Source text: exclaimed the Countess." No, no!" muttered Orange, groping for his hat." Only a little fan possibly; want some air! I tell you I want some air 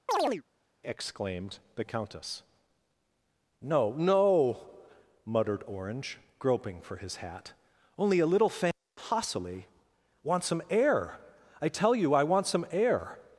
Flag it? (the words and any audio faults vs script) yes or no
yes